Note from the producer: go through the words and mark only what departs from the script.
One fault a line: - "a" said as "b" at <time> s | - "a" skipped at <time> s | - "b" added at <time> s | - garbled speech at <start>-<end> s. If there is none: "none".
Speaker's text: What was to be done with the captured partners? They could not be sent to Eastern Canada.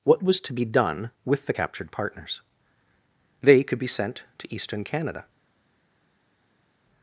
- "not" skipped at 3.8 s